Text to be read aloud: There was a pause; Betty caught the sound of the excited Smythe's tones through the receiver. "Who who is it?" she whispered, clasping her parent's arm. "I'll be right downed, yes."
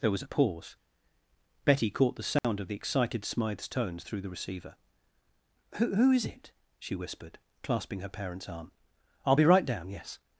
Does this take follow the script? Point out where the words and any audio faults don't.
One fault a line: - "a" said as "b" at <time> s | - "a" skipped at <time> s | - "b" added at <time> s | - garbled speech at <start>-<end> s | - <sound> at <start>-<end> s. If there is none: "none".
- dropout at 2.4-2.4 s
- "downed" said as "down" at 9.6 s